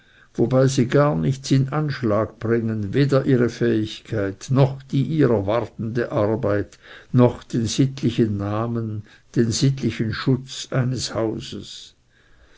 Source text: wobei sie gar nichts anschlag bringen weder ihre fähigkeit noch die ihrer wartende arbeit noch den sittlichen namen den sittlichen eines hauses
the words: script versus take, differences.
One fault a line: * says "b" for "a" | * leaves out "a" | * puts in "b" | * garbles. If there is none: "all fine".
* puts in "in"
* puts in "schutz"